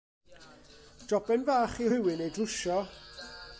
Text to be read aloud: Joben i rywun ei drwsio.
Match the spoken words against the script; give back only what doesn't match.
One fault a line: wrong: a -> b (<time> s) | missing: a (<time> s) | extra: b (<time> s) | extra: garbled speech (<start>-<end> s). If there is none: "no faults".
extra: fach (1.5 s)